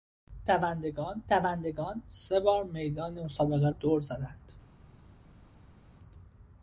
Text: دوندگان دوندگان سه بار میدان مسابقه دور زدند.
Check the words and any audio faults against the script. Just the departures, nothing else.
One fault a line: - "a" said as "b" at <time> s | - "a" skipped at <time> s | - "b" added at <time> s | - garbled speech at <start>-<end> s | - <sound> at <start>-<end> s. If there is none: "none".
none